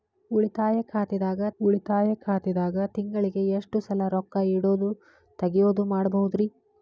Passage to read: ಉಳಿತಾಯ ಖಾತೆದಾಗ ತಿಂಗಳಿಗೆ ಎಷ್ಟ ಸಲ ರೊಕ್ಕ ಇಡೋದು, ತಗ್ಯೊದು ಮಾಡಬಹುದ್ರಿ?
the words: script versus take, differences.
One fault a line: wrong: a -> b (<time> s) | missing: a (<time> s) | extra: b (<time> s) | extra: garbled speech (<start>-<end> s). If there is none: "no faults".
extra: ಉಳಿತಾಯ ಖಾತೆದಾಗ (1.6 s)